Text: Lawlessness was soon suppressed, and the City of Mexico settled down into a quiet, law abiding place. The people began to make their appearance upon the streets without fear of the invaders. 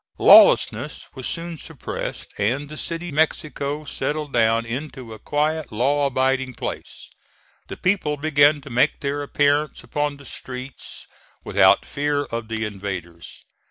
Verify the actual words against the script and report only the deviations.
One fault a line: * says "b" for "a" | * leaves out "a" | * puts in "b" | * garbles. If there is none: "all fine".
* leaves out "of"